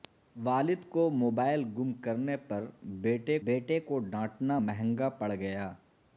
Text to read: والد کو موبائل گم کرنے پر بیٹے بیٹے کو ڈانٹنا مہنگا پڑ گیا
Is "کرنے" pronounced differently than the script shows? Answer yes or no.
no